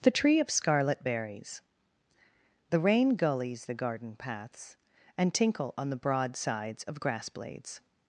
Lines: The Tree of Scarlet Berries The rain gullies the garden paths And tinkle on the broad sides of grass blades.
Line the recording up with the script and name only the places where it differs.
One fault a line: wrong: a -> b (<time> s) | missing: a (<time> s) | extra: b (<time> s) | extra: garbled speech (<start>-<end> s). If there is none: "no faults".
no faults